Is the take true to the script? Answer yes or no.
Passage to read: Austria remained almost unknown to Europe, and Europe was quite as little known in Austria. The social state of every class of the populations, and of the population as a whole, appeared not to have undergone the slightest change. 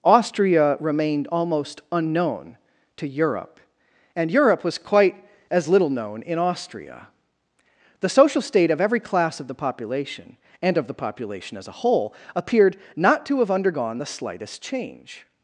no